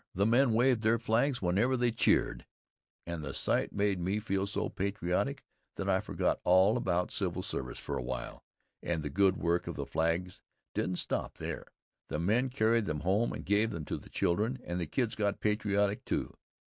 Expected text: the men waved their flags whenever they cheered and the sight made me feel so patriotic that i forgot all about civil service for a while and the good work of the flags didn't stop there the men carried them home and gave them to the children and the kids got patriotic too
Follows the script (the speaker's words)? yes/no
yes